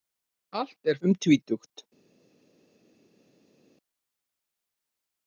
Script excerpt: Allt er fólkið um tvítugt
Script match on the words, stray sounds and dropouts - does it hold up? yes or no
no